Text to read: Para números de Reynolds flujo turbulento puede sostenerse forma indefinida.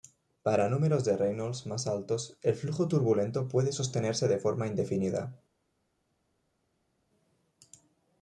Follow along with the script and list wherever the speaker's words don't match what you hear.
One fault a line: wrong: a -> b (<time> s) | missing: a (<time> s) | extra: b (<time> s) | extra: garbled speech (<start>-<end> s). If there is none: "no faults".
extra: más altos el (1.7 s)
extra: de (4.3 s)